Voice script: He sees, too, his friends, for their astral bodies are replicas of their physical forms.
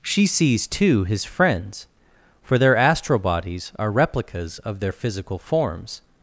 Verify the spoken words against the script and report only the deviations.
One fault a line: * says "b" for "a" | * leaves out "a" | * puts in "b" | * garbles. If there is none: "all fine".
* says "She" for "He"